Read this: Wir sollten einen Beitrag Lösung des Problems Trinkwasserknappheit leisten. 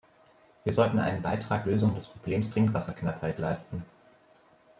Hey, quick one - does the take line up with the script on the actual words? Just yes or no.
yes